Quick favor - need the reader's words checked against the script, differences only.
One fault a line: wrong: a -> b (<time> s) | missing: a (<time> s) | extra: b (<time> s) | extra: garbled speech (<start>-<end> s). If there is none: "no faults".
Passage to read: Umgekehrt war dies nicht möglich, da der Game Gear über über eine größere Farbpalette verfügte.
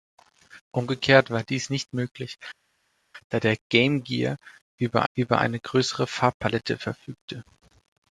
no faults